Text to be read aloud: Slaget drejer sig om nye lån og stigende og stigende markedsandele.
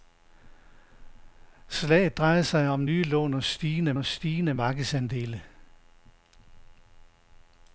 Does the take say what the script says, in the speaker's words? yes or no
yes